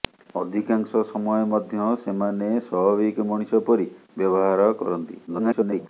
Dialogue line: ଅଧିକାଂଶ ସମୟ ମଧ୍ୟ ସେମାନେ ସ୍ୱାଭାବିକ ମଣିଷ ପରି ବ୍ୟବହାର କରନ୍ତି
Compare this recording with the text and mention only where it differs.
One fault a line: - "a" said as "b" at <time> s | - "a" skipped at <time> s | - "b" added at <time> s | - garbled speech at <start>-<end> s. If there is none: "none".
- garbled speech at 5.3-5.9 s